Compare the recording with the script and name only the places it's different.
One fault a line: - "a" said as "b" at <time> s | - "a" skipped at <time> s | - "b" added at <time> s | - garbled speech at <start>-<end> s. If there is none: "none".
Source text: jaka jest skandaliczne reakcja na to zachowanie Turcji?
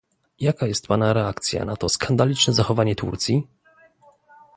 - "skandaliczne" said as "pana" at 0.9 s
- "skandaliczne" added at 1.9 s